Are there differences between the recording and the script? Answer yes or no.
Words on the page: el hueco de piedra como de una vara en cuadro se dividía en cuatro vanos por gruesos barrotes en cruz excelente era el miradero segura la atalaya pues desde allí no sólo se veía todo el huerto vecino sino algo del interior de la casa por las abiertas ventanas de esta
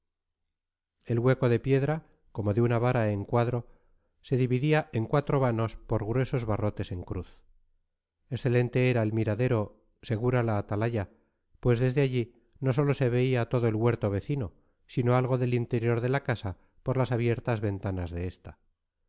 no